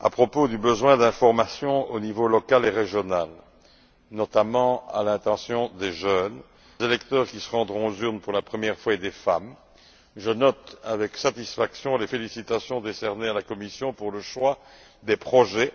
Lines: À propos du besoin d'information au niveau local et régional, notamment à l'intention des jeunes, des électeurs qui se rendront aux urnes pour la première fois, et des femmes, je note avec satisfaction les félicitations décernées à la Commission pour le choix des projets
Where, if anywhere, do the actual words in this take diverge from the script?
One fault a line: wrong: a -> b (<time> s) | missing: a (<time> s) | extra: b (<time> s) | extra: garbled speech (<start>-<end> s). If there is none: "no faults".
missing: des (6.3 s)